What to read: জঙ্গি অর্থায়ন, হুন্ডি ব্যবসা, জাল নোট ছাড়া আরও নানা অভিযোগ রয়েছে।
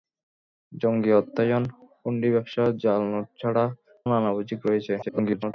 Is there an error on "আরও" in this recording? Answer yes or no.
yes